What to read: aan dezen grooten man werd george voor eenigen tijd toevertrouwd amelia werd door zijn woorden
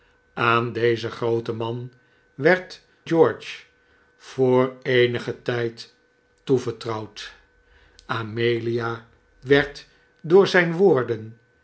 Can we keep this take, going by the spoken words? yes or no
yes